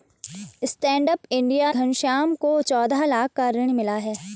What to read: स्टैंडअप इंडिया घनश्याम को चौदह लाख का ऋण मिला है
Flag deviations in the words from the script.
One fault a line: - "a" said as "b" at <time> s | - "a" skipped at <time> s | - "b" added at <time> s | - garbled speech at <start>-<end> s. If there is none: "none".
none